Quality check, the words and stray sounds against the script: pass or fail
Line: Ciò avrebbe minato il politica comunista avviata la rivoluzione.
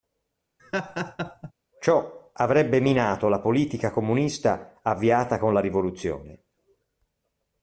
fail